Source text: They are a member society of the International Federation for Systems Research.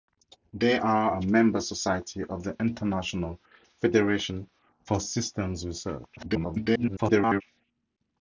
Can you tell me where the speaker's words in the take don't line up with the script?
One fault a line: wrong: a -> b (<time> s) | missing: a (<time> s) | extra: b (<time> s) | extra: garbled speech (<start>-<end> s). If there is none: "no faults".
extra: garbled speech (6.2-7.4 s)